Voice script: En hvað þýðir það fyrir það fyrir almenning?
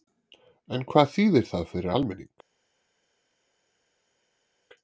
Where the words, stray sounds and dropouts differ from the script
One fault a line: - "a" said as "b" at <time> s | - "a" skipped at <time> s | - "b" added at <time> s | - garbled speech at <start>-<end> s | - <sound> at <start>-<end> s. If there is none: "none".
- "það fyrir" skipped at 1.9 s